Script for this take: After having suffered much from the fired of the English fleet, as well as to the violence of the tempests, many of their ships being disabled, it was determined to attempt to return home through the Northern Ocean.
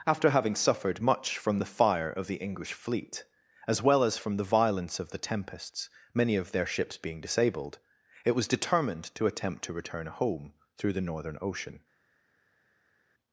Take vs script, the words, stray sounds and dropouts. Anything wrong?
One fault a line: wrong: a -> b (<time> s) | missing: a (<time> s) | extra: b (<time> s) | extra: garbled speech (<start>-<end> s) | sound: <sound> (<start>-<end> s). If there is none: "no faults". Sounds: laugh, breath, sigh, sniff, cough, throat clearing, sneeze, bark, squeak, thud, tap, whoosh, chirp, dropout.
wrong: fired -> fire (1.7 s)
wrong: to -> from (4.2 s)